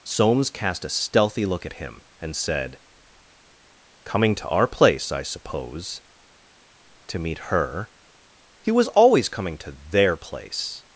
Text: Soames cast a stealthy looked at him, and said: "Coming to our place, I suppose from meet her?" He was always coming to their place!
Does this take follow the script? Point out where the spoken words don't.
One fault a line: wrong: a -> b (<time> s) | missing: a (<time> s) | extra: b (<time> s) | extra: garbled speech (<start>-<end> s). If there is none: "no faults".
wrong: looked -> look (1.4 s)
wrong: from -> to (7.1 s)